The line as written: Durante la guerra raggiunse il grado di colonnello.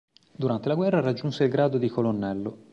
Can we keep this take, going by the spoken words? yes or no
yes